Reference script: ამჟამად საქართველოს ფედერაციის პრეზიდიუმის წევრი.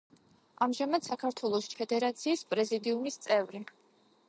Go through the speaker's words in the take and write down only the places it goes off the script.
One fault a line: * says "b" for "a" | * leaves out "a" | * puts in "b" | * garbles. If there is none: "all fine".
all fine